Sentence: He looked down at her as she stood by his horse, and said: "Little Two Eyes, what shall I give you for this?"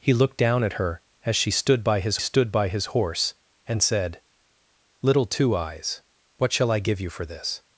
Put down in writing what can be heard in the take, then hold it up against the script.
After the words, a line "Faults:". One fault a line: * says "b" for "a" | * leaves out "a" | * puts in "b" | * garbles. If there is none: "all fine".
He looked down at her as she stood by his stood by his horse, and said: "Little Two Eyes, what shall I give you for this?"
Faults:
* puts in "stood by his"